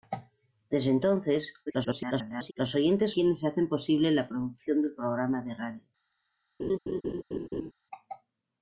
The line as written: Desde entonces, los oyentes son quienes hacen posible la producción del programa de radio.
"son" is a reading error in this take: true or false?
true